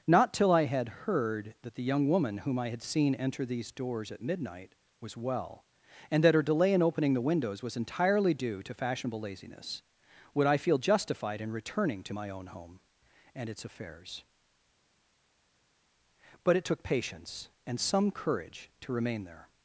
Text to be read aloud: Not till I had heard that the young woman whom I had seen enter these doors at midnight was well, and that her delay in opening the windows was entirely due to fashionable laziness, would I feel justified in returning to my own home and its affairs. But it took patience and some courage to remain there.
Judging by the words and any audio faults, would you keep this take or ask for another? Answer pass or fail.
pass